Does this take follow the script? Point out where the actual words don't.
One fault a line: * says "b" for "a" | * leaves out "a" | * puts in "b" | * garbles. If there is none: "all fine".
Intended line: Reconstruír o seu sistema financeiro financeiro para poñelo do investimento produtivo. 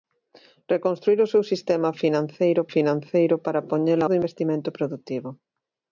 all fine